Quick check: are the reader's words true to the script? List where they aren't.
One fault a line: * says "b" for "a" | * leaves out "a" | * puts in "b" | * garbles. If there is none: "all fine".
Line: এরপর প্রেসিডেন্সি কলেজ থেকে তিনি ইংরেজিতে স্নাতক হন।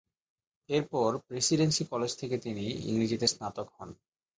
all fine